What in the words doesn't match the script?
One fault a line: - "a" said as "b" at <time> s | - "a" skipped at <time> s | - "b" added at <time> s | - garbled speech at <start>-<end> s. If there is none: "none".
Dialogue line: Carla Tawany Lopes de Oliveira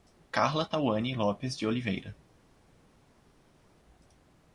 none